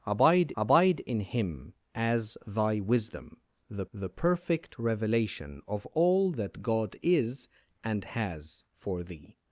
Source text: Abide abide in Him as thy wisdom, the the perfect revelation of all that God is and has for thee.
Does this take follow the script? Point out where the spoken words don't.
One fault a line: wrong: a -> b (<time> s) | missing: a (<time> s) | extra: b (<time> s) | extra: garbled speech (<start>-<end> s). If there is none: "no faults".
no faults